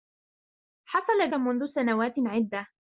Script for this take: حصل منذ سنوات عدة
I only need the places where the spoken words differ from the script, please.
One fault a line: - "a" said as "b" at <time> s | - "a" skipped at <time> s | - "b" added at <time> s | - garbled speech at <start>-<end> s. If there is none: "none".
none